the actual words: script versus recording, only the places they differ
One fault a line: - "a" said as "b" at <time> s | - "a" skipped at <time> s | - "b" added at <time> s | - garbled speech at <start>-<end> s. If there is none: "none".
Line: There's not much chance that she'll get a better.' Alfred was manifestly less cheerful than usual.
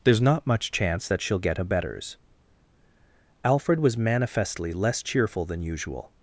- "better" said as "betters" at 1.6 s